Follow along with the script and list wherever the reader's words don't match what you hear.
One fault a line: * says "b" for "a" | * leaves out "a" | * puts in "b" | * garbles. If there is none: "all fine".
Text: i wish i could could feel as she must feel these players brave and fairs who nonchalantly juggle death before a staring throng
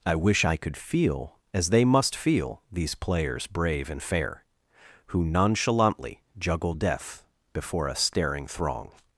* leaves out "could"
* says "they" for "she"
* says "fair" for "fairs"